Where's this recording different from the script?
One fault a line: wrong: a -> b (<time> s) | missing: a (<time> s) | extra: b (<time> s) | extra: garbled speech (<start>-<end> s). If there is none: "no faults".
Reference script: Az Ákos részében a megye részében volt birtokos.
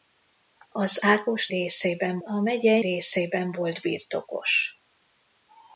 no faults